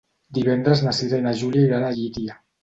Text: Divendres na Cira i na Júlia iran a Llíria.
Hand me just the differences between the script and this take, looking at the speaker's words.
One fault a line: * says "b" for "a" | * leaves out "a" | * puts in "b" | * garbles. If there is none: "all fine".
all fine